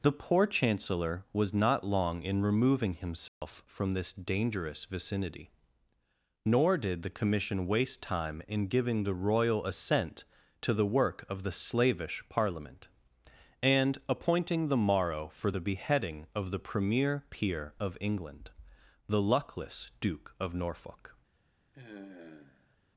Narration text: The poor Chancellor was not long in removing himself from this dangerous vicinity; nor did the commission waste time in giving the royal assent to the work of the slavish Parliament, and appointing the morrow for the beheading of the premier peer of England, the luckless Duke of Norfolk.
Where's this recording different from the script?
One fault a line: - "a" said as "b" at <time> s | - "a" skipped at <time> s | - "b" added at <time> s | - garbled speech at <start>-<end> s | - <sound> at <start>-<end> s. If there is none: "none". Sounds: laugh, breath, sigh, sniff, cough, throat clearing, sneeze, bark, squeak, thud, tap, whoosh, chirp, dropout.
- dropout at 3.3-3.4 s
- sigh at 21.7-22.8 s